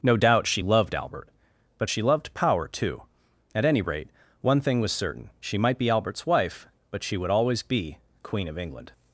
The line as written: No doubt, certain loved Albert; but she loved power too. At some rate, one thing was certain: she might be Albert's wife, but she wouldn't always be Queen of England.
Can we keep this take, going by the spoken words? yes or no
no